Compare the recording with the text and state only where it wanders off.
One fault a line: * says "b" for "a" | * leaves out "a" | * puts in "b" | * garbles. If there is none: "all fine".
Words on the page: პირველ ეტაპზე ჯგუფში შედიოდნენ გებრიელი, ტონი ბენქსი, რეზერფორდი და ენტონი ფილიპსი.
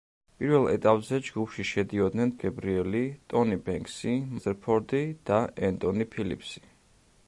all fine